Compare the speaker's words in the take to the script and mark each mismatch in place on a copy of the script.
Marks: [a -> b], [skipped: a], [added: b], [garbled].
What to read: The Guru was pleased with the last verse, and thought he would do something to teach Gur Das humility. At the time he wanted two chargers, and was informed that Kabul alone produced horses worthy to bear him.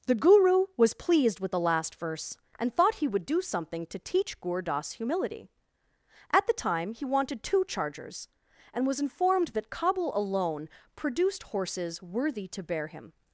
The Guru was pleased with the last verse, and thought he would do something to teach Gur Das humility. At the time he wanted two chargers, and was informed that Kabul alone produced horses worthy to bear him.